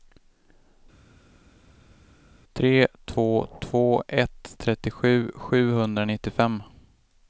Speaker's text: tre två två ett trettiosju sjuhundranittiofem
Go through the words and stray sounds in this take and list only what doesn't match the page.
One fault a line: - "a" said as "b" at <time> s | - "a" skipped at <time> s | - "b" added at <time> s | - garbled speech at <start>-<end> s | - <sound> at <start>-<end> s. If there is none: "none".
none